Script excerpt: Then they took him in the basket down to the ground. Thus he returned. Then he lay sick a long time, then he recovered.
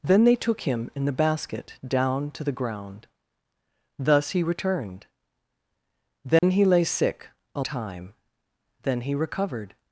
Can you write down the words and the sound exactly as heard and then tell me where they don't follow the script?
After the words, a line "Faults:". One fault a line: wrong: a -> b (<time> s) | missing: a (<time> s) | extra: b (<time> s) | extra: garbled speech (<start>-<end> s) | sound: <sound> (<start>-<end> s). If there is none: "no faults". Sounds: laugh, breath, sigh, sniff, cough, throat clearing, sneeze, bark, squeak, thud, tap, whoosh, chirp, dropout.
Then they took him in the basket down to the ground. Thus he returned. Then he lay sick a time, then he recovered.
Faults:
sound: dropout (6.4-6.4 s)
missing: long (7.6 s)